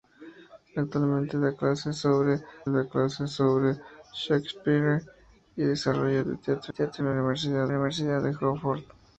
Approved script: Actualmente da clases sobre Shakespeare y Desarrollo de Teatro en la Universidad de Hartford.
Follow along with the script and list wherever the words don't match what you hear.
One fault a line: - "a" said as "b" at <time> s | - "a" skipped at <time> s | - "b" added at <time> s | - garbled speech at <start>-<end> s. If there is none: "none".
- "da clases sobre" added at 2.7 s
- "Teatro" added at 6.7 s
- "Universidad" added at 7.7 s